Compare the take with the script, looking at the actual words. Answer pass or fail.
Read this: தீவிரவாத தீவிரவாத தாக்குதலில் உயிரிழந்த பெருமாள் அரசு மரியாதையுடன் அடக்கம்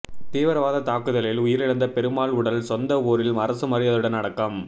fail